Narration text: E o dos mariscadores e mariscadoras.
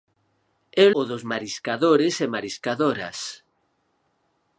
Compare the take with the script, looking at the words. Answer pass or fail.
pass